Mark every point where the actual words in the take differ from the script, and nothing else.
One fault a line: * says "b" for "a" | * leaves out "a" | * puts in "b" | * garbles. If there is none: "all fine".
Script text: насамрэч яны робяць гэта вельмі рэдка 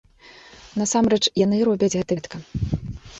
* leaves out "вельмі"